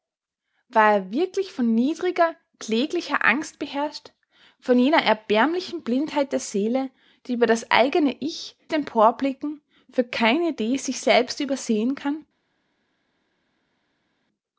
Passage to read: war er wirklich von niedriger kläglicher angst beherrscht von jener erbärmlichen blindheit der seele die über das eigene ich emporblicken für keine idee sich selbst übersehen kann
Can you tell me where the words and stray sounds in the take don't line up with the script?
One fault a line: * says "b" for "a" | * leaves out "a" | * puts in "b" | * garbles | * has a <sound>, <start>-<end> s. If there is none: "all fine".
all fine